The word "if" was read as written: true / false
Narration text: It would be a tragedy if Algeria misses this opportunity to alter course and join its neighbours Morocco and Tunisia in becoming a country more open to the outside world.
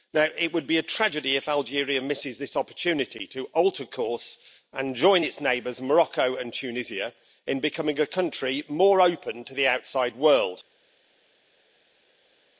true